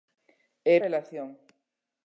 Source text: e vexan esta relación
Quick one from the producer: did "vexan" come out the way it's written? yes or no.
no